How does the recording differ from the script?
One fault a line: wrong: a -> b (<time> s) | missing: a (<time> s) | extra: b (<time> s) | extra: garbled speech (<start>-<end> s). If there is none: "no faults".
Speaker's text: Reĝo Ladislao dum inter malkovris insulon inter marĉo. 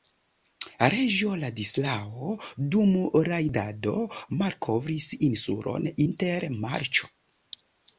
wrong: inter -> rajdado (3.3 s)